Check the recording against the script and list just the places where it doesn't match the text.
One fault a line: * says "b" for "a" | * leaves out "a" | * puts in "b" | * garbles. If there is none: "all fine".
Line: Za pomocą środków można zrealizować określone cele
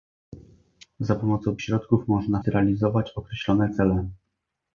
all fine